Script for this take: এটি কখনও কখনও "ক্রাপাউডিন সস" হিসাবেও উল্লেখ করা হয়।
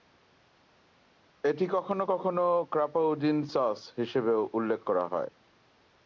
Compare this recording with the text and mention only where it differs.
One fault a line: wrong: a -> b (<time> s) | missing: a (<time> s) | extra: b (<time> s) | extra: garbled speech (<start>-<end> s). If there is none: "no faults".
no faults